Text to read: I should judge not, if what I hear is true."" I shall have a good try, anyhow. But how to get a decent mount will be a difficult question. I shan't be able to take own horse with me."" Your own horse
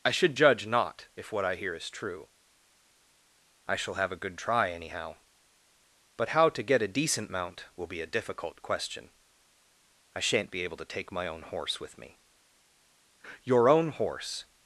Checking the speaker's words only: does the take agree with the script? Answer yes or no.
no